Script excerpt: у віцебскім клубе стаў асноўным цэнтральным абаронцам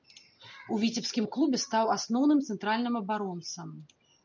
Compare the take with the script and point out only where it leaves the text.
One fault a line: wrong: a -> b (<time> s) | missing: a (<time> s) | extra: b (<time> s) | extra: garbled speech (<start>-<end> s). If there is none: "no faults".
no faults